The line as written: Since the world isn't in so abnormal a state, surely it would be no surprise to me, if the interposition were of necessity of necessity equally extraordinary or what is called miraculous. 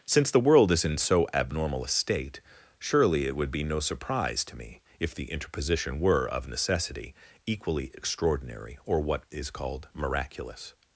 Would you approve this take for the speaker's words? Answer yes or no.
no